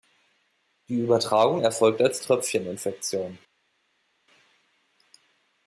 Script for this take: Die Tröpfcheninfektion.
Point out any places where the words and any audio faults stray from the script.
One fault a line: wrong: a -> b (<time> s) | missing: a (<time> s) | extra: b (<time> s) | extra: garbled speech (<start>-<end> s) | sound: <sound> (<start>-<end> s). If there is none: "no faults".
extra: Übertragung erfolgt als (1.0 s)